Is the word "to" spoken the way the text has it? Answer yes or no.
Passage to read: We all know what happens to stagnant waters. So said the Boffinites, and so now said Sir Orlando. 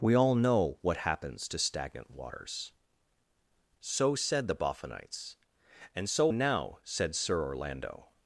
yes